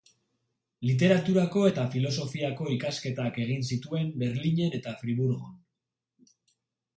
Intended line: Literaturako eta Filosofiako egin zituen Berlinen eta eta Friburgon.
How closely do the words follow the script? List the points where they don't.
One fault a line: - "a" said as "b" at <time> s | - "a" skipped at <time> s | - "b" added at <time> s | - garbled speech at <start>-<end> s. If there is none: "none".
- "ikasketak" added at 2.7 s
- "eta" skipped at 5.0 s